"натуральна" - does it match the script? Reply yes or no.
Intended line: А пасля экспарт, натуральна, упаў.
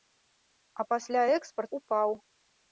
no